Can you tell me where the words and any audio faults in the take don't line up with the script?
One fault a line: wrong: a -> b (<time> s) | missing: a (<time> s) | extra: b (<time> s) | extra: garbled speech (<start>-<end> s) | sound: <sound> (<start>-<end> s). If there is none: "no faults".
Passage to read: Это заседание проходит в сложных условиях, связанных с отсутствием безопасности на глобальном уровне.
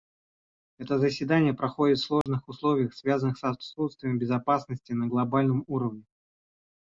sound: dropout (2.2-2.3 s)